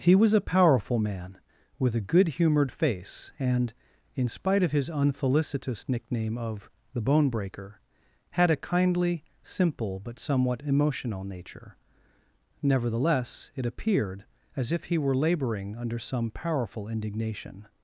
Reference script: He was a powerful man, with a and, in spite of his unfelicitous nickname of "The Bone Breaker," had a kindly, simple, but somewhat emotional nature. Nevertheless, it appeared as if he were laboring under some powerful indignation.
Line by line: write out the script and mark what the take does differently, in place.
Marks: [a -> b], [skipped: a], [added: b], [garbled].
He was a powerful man, with a [added: good humored face] and, in spite of his unfelicitous nickname of "The Bone Breaker," had a kindly, simple, but somewhat emotional nature. Nevertheless, it appeared as if he were laboring under some powerful indignation.